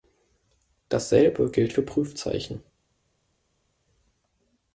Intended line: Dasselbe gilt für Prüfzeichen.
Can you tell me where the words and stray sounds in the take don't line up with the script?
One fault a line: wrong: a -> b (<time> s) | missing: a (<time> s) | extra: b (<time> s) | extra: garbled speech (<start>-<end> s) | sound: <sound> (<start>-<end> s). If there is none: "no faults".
no faults